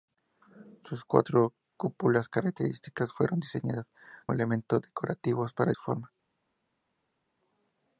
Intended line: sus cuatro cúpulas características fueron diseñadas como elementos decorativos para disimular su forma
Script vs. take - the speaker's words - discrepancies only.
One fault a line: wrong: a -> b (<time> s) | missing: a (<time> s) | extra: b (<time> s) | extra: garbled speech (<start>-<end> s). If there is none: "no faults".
missing: como (3.9 s)
missing: disimular (5.7 s)